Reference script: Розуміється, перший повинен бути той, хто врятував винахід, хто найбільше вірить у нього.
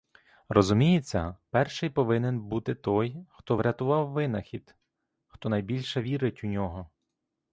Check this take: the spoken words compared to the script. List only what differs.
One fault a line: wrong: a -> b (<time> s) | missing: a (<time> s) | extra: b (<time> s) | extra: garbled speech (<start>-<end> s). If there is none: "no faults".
no faults